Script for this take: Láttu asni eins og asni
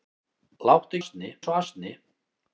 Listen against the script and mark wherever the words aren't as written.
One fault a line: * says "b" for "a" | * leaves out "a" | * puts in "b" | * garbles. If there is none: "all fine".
all fine